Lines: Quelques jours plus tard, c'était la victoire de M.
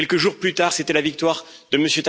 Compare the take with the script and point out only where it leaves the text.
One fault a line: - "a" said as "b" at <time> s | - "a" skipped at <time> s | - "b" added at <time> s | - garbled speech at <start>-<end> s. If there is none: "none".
none